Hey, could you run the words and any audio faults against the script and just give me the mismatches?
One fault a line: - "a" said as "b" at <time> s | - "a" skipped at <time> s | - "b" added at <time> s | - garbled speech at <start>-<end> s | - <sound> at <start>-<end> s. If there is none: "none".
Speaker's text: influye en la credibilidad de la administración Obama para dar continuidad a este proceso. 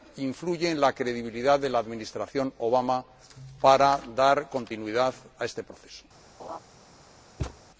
- laugh at 6.4-6.6 s
- thud at 7.4-7.6 s